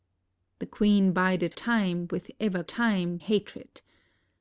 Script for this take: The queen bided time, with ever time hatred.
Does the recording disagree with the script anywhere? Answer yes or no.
no